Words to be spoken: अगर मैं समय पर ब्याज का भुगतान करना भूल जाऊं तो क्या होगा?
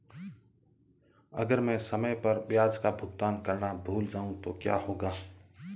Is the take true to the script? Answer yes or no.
yes